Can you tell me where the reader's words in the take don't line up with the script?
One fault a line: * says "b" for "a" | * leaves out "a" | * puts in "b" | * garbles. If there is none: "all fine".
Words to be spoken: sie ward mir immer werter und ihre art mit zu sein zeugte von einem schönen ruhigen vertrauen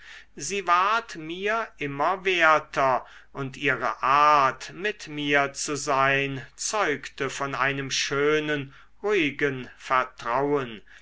* puts in "mir"